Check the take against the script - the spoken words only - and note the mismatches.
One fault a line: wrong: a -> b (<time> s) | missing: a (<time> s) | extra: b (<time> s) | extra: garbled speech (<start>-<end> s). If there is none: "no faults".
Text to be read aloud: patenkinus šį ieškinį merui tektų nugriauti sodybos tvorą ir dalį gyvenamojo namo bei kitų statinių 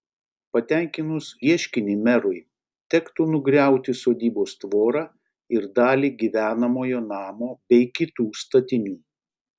missing: šį (1.2 s)